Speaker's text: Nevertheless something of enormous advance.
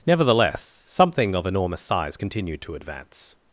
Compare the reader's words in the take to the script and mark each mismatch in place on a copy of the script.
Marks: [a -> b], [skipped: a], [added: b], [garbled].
Nevertheless something of enormous [added: size continued to] advance.